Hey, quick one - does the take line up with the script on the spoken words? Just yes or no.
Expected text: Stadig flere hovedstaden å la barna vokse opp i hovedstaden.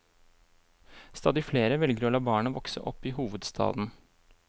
no